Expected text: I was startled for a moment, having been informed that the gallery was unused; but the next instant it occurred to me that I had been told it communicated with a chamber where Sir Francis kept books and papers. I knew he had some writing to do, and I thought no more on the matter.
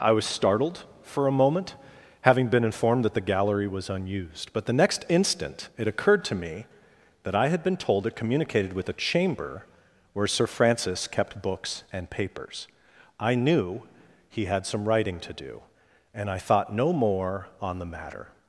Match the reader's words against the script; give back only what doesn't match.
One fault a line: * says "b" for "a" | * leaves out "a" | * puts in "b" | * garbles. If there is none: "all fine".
all fine